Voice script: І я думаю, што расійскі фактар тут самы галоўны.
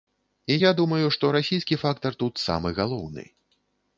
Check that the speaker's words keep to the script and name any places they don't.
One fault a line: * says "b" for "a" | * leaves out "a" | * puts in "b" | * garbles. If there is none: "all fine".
all fine